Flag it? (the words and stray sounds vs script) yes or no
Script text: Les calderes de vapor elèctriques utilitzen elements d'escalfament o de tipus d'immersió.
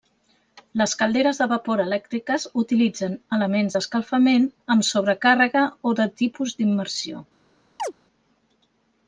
yes